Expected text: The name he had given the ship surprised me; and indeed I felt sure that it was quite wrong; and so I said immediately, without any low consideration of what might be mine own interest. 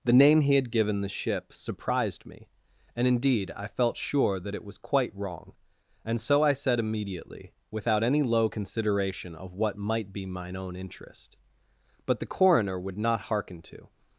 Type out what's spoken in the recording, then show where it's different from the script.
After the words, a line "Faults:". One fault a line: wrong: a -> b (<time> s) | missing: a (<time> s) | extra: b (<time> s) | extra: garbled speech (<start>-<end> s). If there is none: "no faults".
The name he had given the ship surprised me; and indeed I felt sure that it was quite wrong; and so I said immediately, without any low consideration of what might be mine own interest. But the Coroner would not hearken to
Faults:
extra: But the Coroner would not hearken to (12.0 s)